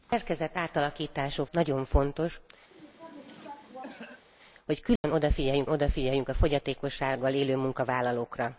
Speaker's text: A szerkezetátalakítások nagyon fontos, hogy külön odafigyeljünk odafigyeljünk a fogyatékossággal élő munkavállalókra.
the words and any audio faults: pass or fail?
fail